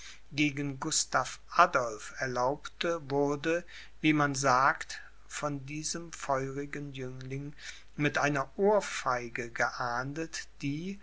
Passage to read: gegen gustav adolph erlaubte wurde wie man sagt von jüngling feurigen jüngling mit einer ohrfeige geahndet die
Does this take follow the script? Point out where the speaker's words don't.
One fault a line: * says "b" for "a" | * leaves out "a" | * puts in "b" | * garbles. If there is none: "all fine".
* says "diesem" for "jüngling"